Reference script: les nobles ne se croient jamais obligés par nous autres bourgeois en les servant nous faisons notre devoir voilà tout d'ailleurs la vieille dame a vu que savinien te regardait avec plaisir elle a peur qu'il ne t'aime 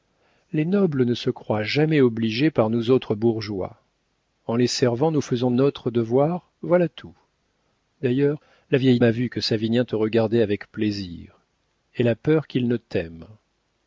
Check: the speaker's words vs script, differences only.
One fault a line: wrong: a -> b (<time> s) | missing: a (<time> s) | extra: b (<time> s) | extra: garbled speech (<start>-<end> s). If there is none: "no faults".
missing: dame (9.0 s)